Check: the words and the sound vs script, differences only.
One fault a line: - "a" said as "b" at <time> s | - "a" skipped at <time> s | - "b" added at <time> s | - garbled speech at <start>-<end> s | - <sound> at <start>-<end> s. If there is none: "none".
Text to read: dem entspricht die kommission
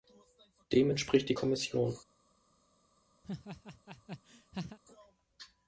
- laugh at 3.2-4.8 s